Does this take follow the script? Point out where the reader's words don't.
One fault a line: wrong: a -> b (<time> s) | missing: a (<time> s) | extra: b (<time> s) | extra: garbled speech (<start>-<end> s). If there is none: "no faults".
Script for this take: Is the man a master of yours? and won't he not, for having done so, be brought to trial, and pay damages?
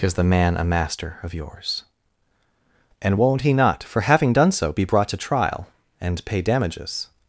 no faults